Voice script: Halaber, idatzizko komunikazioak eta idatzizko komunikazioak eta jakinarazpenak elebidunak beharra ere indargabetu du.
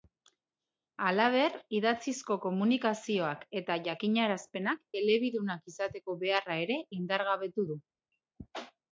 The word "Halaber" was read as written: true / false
true